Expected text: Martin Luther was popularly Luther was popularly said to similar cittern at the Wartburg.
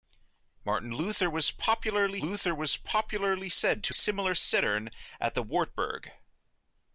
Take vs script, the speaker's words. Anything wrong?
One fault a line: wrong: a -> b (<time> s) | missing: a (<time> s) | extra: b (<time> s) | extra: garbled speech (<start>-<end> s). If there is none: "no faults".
no faults